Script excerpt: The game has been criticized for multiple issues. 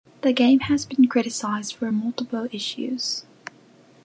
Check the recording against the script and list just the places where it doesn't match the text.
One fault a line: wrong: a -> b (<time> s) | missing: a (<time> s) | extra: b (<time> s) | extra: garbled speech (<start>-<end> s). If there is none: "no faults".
no faults